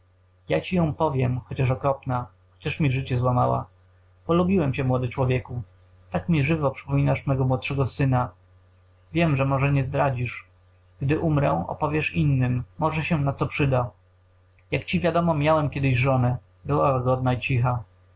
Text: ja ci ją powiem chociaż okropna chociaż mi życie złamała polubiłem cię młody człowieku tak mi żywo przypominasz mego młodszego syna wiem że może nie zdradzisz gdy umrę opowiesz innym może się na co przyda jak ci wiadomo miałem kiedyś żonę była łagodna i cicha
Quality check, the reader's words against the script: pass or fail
pass